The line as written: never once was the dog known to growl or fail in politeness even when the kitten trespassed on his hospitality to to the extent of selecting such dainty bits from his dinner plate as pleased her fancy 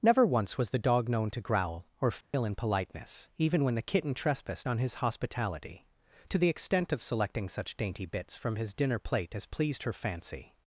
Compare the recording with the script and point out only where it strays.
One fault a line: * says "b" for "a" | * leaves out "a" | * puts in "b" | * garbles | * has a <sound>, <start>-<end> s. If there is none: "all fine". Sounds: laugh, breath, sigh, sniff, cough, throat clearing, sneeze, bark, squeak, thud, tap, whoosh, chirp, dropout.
* has a dropout, 2.2-2.3 s
* leaves out "to"